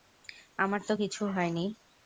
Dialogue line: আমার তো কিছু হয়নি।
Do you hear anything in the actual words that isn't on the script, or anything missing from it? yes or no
no